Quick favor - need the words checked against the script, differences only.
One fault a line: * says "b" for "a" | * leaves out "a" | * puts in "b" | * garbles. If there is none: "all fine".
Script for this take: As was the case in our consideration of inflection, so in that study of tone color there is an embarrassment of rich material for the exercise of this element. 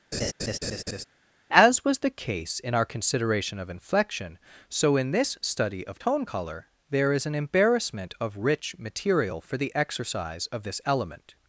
* says "this" for "that"